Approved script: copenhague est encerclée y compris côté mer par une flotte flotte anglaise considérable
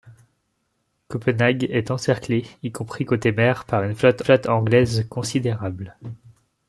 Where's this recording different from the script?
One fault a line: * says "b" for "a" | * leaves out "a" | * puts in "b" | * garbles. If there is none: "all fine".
all fine